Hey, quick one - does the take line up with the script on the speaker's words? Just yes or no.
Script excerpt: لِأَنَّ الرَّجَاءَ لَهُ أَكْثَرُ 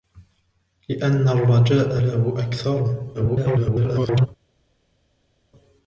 no